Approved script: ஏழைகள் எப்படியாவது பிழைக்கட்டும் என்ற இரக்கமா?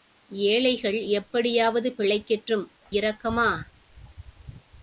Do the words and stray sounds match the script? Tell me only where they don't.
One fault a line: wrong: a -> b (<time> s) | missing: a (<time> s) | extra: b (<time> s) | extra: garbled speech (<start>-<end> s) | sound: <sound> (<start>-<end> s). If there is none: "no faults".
missing: என்ற (2.6 s)